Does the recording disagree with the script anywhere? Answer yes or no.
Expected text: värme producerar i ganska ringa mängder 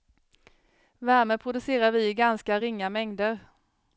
yes